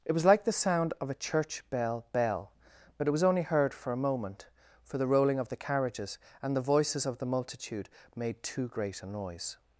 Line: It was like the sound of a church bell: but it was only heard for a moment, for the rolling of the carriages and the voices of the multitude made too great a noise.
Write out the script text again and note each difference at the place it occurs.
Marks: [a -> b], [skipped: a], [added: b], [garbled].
It was like the sound of a church bell: [added: bell] but it was only heard for a moment, for the rolling of the carriages and the voices of the multitude made too great a noise.